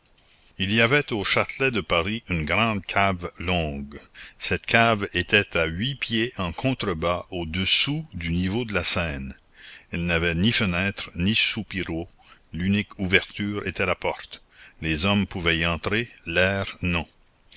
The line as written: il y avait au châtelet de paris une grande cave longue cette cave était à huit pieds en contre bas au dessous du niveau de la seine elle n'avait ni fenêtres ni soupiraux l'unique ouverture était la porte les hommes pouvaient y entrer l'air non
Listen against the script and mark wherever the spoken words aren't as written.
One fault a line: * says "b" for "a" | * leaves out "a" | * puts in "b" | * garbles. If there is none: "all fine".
all fine